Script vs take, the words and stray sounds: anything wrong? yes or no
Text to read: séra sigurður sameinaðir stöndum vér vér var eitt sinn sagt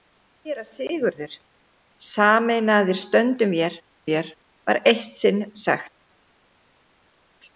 no